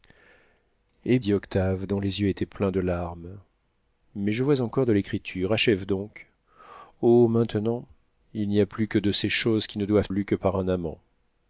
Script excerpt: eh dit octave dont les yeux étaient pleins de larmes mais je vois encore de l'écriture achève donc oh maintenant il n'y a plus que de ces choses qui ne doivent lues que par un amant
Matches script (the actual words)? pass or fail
pass